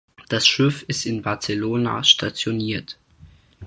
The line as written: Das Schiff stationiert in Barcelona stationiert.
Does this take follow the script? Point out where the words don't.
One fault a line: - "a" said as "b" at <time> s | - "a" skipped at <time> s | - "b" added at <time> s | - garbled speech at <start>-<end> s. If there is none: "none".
- "stationiert" said as "ist" at 0.9 s